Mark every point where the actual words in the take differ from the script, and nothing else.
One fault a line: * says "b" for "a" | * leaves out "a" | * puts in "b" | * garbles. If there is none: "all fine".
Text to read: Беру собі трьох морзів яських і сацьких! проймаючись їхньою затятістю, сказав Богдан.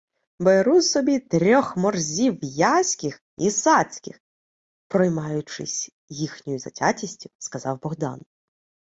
all fine